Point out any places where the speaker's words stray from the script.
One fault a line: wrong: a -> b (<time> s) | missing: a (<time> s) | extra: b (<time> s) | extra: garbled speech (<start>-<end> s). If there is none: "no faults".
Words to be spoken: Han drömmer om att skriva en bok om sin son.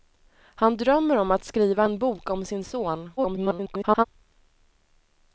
extra: garbled speech (3.2-4.0 s)